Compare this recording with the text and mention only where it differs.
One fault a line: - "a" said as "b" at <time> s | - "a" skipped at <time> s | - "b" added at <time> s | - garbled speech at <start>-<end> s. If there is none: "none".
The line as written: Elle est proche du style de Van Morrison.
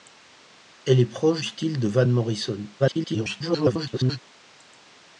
- "du" skipped at 1.4 s
- garbled speech at 2.8-4.2 s